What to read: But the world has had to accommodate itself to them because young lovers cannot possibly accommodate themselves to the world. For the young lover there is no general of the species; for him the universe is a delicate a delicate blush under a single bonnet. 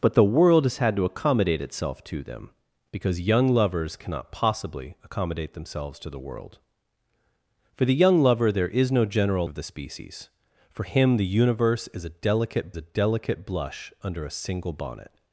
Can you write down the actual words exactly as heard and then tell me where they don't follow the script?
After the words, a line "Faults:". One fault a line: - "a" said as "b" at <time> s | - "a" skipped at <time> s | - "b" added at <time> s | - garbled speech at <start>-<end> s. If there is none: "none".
But the world has had to accommodate itself to them because young lovers cannot possibly accommodate themselves to the world. For the young lover there is no general of the species; for him the universe is a delicate a delicate blush under a single bonnet.
Faults:
none